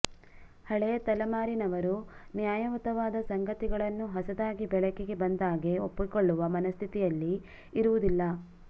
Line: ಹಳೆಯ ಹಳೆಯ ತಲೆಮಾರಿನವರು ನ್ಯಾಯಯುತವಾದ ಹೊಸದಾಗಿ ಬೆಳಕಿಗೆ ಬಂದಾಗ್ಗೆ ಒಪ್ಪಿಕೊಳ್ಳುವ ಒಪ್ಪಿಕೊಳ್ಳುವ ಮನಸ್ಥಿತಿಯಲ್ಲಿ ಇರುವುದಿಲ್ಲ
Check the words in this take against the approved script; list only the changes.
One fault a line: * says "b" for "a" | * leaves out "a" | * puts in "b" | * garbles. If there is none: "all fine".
* leaves out "ಹಳೆಯ"
* puts in "ಸಂಗತಿಗಳನ್ನು"
* leaves out "ಒಪ್ಪಿಕೊಳ್ಳುವ"